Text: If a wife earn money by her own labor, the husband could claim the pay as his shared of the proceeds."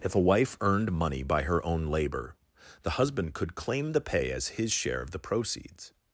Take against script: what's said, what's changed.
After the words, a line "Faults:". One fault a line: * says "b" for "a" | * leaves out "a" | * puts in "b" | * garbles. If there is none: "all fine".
If a wife earned money by her own labor, the husband could claim the pay as his share of the proceeds."
Faults:
* says "earned" for "earn"
* says "share" for "shared"